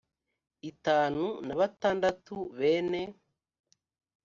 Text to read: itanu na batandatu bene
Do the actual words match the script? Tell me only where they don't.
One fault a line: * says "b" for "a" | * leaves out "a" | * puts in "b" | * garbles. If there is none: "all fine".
all fine